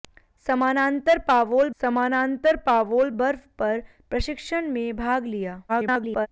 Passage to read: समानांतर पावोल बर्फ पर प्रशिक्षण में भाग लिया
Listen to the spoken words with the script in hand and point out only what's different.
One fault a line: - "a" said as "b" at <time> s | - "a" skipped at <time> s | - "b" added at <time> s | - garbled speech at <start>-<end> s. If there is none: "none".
- "समानांतर पावोल" added at 1.8 s
- garbled speech at 5.7-6.3 s